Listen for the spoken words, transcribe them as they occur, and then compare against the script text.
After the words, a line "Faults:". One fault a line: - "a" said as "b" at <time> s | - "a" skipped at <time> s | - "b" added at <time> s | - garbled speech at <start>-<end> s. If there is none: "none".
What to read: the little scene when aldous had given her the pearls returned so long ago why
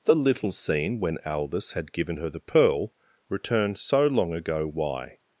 the little scene when aldous had given her the pearl returned so long ago why
Faults:
- "pearls" said as "pearl" at 2.4 s